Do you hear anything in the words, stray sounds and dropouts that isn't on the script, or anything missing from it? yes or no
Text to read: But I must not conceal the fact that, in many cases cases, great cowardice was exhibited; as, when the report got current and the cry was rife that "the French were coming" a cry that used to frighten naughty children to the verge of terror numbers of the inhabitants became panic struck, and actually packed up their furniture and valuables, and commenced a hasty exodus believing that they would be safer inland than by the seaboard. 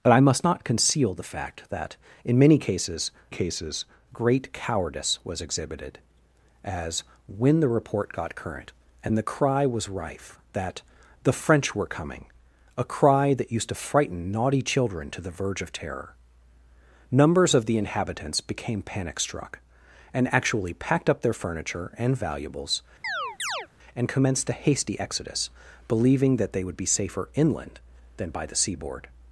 yes